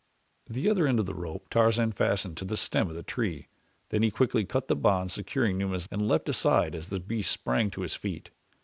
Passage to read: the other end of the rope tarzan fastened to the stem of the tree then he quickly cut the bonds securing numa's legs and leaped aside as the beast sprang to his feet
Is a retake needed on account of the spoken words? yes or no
yes